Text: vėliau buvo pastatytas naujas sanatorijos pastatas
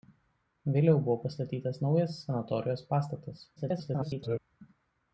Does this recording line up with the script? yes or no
no